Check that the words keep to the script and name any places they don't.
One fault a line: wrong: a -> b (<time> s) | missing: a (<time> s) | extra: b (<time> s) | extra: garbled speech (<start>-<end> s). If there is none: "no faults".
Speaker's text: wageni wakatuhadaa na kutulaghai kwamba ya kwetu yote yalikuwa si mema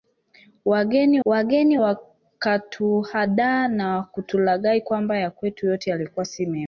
extra: wageni (1.2 s)